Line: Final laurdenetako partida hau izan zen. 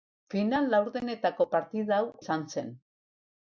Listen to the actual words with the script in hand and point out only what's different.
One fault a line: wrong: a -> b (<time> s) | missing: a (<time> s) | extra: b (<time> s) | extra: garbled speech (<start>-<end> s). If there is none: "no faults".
no faults